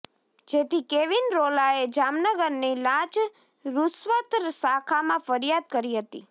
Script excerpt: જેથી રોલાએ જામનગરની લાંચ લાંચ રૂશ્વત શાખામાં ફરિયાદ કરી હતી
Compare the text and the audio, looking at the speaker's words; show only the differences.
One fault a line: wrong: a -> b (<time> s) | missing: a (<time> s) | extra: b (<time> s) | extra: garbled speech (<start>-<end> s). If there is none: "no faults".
extra: કેવિન (0.8 s)
missing: લાંચ (3.2 s)